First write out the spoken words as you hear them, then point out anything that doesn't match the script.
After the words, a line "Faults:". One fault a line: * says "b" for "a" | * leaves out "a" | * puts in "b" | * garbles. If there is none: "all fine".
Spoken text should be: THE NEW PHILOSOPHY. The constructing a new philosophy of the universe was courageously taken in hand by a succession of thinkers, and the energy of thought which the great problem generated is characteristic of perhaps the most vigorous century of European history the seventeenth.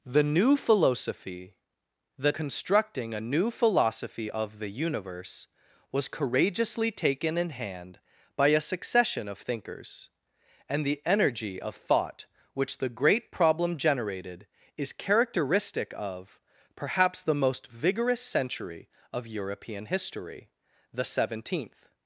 THE NEW PHILOSOPHY. The constructing a new philosophy of the universe was courageously taken in hand by a succession of thinkers, and the energy of thought which the great problem generated is characteristic of perhaps the most vigorous century of European history the seventeenth.
Faults:
all fine